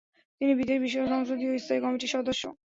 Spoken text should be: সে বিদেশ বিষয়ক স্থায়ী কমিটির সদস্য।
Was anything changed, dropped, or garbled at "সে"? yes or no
yes